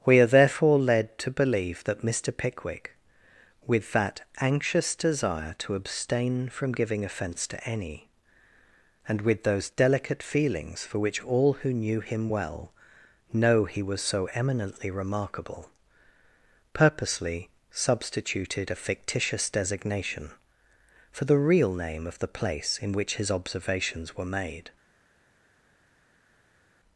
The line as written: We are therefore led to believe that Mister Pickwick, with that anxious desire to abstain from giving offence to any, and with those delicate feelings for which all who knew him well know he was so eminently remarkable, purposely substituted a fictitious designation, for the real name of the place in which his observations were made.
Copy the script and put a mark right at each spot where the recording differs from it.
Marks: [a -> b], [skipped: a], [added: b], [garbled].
We are therefore led to believe that Mister Pickwick, with that anxious desire to abstain from giving offence to any, and with those delicate feelings for which all who knew him well know he was so eminently remarkable, purposely substituted a fictitious designation, for the real name of the place in which his observations were made.